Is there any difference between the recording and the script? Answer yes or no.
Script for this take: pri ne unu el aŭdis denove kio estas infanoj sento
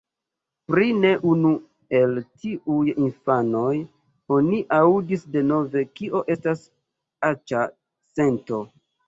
yes